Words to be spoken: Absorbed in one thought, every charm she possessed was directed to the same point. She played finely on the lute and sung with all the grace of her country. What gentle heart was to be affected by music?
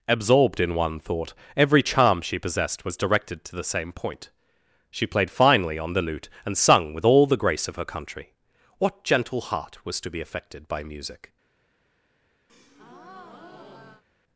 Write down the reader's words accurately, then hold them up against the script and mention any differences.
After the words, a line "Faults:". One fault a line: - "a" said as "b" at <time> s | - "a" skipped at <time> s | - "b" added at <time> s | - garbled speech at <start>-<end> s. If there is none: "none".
Absorbed in one thought, every charm she possessed was directed to the same point. She played finely on the lute and sung with all the grace of her country. What gentle heart was to be affected by music?
Faults:
none